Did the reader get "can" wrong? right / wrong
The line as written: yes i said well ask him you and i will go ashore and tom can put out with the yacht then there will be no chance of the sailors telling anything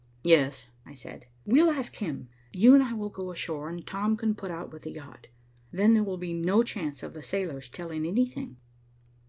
right